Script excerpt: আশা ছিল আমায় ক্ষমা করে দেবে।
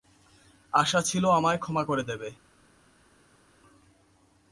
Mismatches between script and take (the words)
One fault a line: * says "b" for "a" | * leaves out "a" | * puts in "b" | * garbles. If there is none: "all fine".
all fine